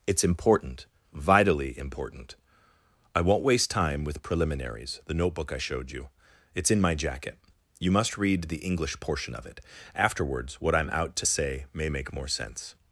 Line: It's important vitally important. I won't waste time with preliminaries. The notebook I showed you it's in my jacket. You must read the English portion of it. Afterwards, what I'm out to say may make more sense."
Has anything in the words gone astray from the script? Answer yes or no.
no